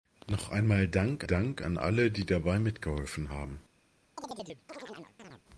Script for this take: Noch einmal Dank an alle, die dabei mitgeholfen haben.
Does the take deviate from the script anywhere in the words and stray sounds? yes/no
yes